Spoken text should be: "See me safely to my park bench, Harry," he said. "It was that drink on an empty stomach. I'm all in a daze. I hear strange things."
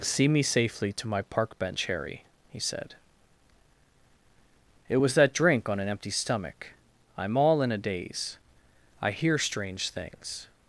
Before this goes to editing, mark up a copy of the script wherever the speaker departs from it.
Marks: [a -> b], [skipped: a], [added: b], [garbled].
"See me safely to my park bench, Harry," he said. "It was that drink on an empty stomach. I'm all in a daze. I hear strange things."